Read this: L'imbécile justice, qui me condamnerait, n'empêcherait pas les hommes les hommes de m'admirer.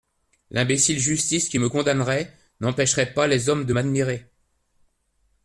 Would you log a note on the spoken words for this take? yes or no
yes